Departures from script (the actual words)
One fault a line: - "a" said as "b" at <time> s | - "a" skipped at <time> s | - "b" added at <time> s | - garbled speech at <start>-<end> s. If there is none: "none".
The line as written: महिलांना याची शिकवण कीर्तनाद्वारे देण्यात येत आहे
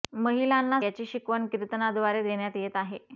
none